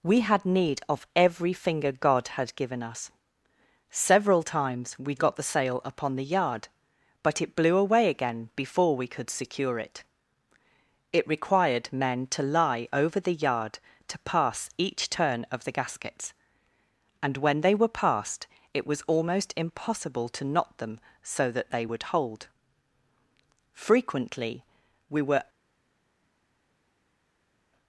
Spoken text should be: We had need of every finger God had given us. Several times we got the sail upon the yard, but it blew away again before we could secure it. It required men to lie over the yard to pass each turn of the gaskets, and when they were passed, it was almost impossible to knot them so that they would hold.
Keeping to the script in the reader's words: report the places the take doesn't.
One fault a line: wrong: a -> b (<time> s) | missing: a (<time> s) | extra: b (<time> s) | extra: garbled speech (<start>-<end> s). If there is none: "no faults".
extra: Frequently we were (23.7 s)